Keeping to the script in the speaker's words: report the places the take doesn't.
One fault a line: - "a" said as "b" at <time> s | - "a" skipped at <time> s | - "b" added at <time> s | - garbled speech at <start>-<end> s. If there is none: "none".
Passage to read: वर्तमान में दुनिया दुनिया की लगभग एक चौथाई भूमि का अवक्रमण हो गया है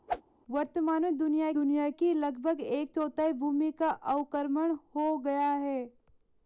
none